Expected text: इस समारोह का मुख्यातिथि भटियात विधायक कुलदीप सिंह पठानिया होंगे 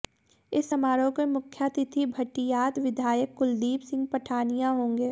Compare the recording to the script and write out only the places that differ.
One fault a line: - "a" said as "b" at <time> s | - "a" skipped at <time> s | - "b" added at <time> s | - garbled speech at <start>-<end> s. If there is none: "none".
- "का" said as "के" at 1.1 s